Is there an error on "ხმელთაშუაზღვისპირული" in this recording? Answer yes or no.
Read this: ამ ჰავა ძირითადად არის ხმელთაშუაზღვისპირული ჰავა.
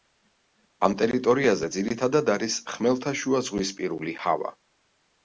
no